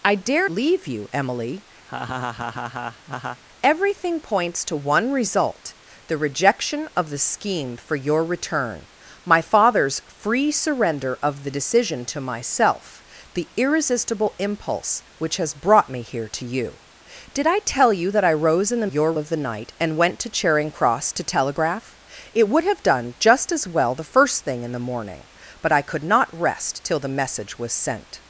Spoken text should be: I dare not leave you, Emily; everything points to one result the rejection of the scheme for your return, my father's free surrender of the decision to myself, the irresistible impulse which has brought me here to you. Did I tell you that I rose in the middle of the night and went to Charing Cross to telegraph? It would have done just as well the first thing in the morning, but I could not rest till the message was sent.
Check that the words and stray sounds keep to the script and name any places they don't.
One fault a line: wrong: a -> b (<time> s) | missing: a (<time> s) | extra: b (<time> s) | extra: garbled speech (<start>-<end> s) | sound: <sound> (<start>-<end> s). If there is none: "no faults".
missing: not (0.5 s)
sound: laugh (1.9-3.4 s)
wrong: middle -> your (18.8 s)